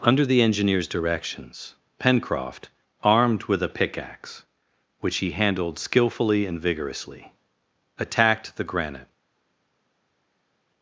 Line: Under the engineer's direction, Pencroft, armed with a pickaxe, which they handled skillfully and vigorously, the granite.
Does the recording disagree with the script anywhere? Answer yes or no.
yes